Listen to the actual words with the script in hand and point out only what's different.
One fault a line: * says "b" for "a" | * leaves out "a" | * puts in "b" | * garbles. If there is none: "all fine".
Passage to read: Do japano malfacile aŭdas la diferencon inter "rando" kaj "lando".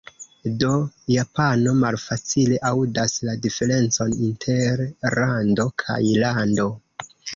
all fine